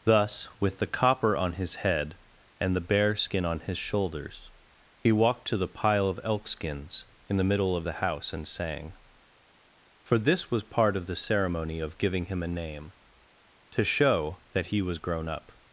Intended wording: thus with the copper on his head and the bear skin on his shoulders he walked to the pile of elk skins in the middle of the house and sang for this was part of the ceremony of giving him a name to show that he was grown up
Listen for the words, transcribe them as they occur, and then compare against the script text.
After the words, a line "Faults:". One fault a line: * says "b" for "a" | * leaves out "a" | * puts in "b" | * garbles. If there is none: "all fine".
thus with the copper on his head and the bear skin on his shoulders he walked to the pile of elk skins in the middle of the house and sang for this was part of the ceremony of giving him a name to show that he was grown up
Faults:
all fine